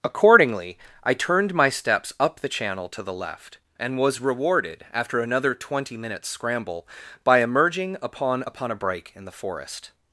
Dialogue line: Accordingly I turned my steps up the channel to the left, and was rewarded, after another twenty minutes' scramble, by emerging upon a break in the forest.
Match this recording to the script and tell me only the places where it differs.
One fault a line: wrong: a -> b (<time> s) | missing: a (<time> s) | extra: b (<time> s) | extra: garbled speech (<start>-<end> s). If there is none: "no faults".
extra: upon (8.4 s)